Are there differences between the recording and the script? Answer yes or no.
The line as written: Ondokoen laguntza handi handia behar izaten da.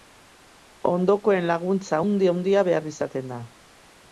no